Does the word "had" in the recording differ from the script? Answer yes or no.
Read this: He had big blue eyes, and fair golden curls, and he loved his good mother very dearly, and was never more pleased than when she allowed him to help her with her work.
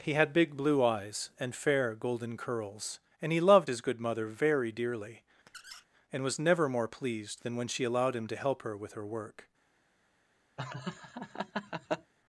no